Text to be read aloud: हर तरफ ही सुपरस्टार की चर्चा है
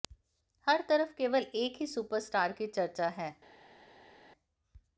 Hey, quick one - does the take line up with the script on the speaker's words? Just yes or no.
no